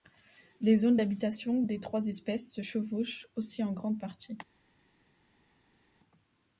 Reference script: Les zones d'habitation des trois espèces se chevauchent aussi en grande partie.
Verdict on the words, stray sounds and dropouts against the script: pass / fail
pass